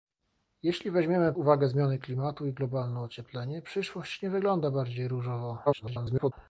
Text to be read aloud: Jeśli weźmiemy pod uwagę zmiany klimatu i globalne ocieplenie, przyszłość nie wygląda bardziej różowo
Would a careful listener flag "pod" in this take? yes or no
yes